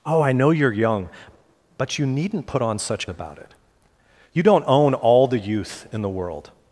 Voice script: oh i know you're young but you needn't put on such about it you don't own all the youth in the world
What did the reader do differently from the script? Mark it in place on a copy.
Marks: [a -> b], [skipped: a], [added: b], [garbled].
oh i know you're young but you needn't put on such about it you don't own all the youth in the world